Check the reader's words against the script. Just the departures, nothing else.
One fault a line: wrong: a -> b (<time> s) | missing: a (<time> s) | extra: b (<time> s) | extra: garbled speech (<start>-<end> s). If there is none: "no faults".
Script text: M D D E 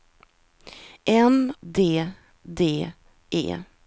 no faults